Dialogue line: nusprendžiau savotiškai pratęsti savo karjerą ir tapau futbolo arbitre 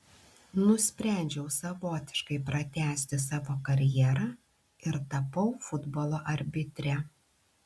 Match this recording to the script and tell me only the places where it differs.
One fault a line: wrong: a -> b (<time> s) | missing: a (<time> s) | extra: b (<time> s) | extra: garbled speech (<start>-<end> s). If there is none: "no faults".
no faults